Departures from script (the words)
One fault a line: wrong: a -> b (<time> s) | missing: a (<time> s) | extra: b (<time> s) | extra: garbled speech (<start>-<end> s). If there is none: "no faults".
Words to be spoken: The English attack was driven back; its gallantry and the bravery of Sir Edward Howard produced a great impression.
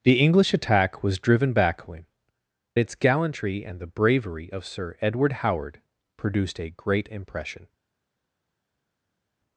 no faults